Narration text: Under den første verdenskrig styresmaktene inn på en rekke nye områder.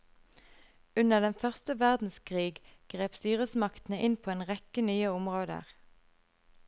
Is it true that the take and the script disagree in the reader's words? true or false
true